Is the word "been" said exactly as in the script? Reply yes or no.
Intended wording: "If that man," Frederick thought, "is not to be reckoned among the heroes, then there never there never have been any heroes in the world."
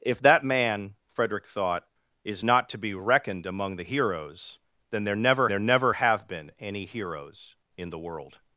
yes